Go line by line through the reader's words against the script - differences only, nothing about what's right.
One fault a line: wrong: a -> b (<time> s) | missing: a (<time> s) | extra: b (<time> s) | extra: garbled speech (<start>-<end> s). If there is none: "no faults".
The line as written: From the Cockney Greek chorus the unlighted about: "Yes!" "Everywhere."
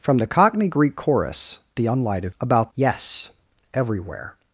no faults